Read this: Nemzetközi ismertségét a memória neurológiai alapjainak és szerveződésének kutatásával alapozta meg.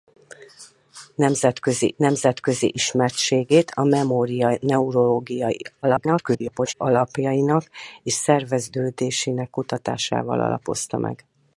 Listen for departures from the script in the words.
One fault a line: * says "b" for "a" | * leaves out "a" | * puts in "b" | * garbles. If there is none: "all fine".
* puts in "nemzetközi"
* garbles